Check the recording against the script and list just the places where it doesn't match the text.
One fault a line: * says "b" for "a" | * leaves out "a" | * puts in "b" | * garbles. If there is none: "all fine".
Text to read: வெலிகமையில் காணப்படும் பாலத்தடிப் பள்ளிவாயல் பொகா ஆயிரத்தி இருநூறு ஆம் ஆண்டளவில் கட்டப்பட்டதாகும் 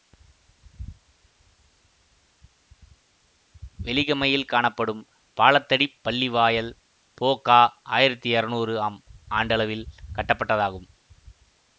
all fine